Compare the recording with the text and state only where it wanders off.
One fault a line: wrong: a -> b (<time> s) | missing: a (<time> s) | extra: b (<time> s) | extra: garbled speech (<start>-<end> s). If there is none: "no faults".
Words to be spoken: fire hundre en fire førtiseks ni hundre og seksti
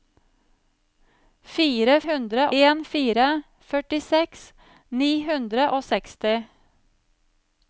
no faults